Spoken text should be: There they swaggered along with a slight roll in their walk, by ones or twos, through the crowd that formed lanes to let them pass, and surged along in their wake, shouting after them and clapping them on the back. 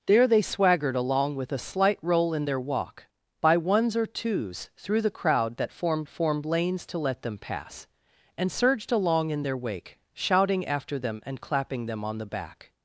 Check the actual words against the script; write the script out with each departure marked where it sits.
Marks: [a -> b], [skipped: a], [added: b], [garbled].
There they swaggered along with a slight roll in their walk, by ones or twos, through the crowd that formed [added: formed] lanes to let them pass, and surged along in their wake, shouting after them and clapping them on the back.